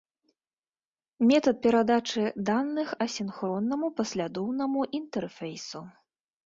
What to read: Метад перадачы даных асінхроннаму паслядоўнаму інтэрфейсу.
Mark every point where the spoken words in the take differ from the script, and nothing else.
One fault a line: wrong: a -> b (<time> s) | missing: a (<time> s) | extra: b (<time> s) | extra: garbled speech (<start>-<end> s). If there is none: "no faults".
no faults